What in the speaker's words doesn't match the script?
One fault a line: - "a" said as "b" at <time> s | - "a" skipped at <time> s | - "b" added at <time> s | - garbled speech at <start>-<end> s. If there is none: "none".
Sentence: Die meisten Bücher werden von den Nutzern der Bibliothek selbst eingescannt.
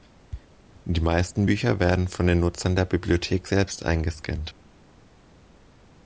none